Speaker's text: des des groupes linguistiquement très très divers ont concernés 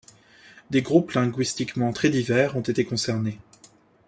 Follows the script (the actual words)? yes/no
no